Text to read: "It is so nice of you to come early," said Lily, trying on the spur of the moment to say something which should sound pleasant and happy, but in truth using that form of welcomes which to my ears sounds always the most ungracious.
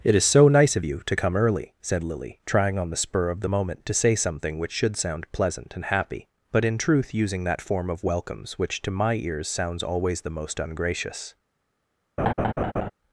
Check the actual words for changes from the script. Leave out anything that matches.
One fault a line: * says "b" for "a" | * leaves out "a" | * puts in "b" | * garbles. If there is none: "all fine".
all fine